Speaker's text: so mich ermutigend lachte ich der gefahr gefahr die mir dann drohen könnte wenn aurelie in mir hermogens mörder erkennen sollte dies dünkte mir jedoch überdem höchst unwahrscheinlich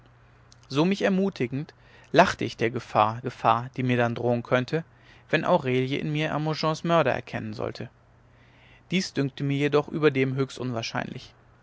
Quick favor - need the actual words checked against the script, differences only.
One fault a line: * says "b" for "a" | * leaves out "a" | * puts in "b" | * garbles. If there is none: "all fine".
all fine